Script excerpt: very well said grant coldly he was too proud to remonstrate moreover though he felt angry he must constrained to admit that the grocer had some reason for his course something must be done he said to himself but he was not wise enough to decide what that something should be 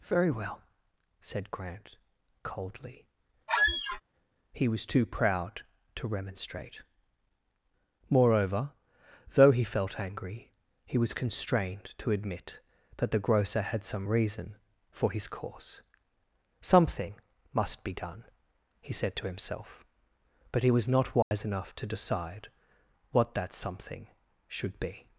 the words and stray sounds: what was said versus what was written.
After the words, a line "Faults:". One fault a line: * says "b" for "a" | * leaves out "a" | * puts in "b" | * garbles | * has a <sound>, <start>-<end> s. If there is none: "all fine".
very well said grant coldly he was too proud to remonstrate moreover though he felt angry he was constrained to admit that the grocer had some reason for his course something must be done he said to himself but he was not wise enough to decide what that something should be
Faults:
* has a squeak, 3.5-4.0 s
* says "was" for "must"
* has a dropout, 21.2-21.3 s